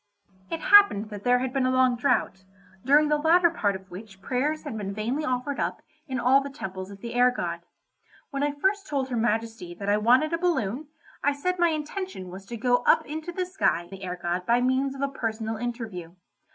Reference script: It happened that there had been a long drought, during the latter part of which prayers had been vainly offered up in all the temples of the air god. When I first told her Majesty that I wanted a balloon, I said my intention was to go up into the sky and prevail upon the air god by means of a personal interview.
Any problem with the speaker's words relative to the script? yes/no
yes